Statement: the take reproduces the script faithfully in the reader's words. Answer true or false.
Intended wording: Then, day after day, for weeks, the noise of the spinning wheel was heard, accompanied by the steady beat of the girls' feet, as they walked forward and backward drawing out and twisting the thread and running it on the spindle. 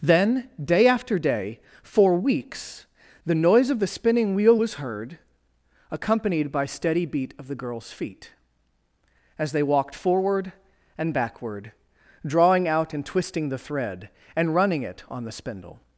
false